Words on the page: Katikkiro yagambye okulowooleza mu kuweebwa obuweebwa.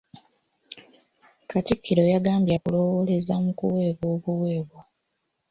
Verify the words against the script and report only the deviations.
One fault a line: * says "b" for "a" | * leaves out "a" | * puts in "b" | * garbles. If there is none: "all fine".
all fine